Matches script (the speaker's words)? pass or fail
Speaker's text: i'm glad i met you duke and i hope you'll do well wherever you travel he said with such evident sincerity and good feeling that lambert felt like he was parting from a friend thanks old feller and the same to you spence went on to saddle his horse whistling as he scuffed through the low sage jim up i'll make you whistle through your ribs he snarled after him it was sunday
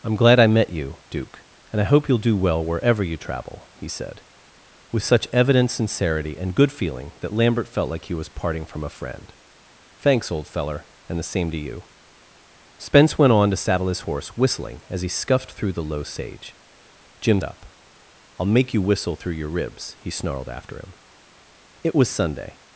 pass